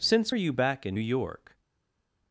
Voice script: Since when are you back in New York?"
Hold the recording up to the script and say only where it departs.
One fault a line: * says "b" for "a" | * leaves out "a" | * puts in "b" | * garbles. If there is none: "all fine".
* leaves out "when"
* leaves out "New"